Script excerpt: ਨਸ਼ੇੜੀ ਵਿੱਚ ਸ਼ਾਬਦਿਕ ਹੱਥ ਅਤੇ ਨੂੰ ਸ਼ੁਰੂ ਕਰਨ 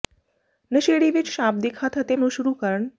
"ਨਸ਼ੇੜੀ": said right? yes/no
yes